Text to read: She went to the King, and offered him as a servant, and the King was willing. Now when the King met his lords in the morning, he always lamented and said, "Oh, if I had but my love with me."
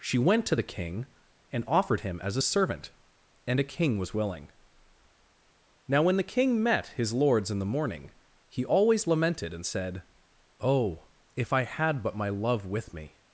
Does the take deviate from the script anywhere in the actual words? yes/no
yes